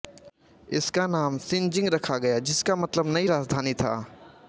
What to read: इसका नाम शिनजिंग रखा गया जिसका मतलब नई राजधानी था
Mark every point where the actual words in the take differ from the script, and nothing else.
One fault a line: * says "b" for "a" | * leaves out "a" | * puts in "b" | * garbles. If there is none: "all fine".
all fine